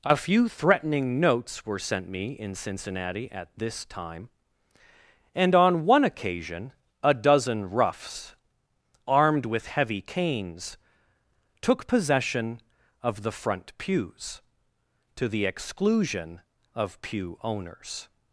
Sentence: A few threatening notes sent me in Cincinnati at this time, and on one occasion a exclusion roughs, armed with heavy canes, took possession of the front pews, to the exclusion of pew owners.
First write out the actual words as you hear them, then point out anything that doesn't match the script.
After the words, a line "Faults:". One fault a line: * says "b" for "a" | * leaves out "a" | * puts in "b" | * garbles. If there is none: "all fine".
A few threatening notes were sent me in Cincinnati at this time, and on one occasion a dozen roughs, armed with heavy canes, took possession of the front pews, to the exclusion of pew owners.
Faults:
* puts in "were"
* says "dozen" for "exclusion"